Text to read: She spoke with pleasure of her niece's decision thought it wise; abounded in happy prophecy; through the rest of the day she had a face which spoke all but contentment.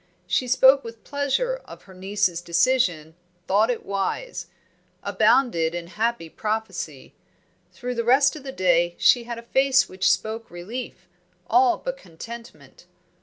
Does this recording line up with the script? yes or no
no